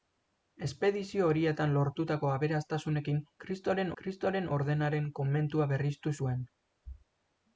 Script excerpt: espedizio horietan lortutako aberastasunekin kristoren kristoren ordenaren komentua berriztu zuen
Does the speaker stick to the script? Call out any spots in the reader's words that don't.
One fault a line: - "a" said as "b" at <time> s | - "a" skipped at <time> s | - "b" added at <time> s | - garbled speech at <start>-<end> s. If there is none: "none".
none